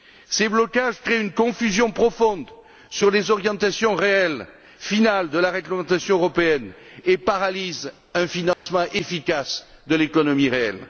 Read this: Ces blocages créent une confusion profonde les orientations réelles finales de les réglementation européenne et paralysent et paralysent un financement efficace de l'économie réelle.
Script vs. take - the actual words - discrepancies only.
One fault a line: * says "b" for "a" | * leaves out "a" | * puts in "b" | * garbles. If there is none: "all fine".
* puts in "sur"
* says "la" for "les"
* leaves out "et paralysent"